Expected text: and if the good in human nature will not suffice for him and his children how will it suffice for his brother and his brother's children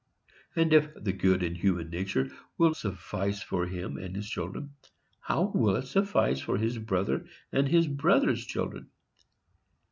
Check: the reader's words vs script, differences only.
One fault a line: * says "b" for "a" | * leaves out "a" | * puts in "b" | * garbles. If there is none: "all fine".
* leaves out "not"